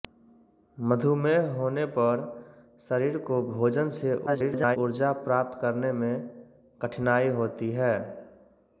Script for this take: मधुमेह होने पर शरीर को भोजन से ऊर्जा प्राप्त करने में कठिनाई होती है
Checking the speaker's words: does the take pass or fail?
fail